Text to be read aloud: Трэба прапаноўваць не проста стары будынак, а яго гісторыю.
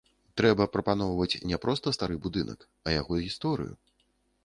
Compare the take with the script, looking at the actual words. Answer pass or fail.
pass